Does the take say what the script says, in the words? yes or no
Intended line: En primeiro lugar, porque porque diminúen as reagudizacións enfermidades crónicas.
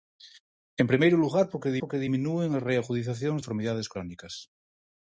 yes